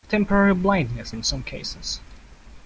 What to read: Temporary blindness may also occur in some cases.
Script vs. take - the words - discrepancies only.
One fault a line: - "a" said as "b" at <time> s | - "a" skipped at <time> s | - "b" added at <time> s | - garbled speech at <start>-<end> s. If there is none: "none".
- "may also occur" skipped at 1.1 s